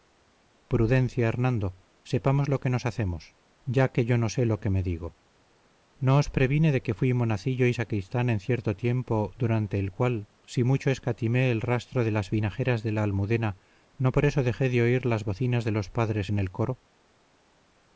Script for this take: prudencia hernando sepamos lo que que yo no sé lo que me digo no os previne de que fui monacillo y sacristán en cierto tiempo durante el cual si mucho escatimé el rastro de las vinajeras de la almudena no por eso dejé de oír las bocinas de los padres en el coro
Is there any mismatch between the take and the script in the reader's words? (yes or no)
yes